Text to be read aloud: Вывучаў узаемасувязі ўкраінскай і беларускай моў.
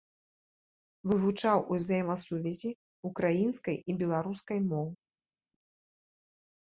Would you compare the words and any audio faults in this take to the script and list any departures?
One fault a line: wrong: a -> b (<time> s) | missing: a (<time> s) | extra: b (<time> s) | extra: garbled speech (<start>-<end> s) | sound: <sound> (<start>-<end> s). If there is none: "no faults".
no faults